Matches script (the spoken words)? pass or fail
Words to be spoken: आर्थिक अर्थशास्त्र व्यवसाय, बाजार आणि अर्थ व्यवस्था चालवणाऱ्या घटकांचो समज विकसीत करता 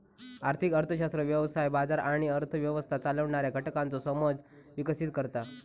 pass